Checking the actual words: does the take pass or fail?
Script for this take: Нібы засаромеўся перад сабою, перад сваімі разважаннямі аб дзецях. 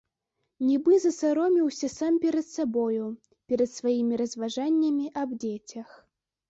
fail